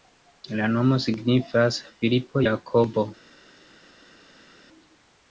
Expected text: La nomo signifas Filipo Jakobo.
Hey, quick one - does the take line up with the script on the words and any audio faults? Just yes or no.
yes